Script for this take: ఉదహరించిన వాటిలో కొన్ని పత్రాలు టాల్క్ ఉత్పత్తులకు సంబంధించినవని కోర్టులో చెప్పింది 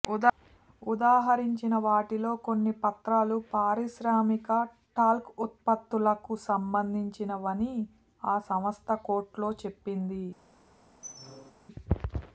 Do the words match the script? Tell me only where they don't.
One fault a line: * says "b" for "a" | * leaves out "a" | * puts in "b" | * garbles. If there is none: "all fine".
* puts in "పారిశ్రామిక"
* puts in "ఆ సంస్థ"